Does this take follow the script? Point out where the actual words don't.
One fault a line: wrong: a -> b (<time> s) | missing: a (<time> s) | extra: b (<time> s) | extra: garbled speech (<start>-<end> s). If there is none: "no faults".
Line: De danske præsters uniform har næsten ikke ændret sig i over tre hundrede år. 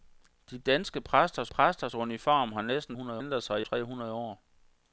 extra: præsters (1.5 s)
wrong: ikke -> hundrede (2.9 s)
missing: over (3.7 s)